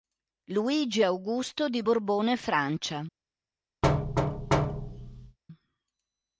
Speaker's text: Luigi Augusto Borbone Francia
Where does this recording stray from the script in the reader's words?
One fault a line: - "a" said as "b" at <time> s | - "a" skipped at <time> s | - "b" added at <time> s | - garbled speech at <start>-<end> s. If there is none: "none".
- "di" added at 1.7 s